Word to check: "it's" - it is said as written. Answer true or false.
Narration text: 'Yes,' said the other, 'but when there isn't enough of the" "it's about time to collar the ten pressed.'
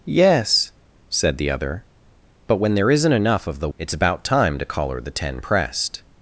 true